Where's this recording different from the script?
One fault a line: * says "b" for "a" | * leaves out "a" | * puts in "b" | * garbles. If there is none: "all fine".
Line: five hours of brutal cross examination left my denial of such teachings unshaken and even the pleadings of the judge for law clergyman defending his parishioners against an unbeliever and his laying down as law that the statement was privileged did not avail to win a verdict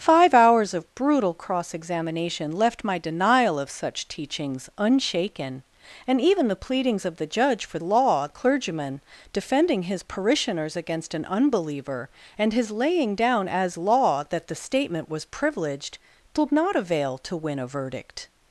all fine